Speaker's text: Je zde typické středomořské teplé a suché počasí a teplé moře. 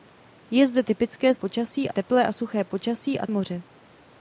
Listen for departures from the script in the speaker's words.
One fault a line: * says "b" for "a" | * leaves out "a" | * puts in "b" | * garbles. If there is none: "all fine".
* says "počasí" for "středomořské"
* leaves out "teplé"